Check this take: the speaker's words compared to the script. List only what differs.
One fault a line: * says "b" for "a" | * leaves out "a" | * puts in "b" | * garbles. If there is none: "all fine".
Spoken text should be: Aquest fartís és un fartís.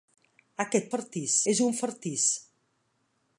all fine